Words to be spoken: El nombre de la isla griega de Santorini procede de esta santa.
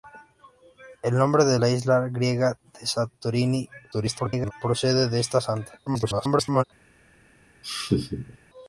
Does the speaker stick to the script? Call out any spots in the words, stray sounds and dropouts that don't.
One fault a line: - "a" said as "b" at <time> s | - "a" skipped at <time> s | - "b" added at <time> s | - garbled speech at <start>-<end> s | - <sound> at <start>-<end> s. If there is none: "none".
- garbled speech at 3.9-4.5 s
- garbled speech at 5.9-6.6 s
- laugh at 7.6-8.4 s